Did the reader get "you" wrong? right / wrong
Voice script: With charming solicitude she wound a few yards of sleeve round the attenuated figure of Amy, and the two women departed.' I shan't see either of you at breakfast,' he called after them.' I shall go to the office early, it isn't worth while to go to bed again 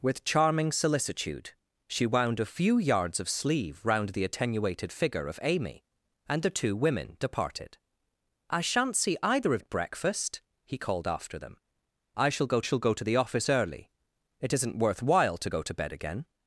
wrong